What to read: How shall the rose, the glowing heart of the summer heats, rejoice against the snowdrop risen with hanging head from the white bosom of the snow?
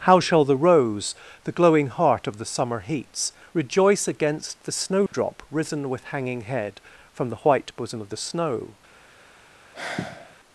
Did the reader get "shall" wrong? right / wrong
right